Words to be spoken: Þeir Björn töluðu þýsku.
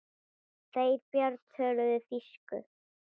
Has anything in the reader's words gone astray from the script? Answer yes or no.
no